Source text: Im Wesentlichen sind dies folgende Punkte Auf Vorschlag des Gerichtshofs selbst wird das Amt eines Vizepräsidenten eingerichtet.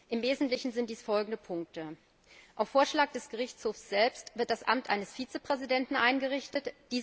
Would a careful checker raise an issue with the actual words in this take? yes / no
no